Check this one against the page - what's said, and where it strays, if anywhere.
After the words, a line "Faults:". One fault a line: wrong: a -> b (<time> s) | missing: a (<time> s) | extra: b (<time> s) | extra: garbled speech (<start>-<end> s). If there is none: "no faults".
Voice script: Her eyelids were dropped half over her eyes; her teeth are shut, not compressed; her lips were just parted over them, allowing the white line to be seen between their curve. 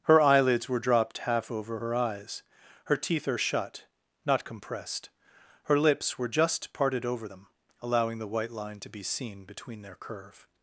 Her eyelids were dropped half over her eyes; her teeth are shut, not compressed; her lips were just parted over them, allowing the white line to be seen between their curve.
Faults:
no faults